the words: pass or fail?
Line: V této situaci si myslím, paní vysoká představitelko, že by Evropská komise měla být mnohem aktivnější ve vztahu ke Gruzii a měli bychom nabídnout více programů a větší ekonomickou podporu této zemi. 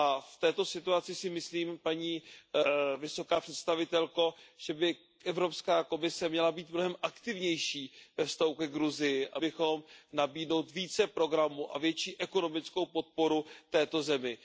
fail